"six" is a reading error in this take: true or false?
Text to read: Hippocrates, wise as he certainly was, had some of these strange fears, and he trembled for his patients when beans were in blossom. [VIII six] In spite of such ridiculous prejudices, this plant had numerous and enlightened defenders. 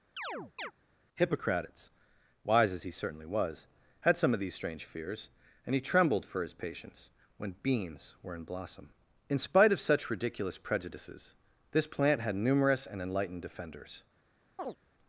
true